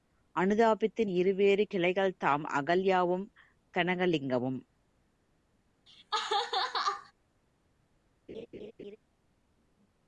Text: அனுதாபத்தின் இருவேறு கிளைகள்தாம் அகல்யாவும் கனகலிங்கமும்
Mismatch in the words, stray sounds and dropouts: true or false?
true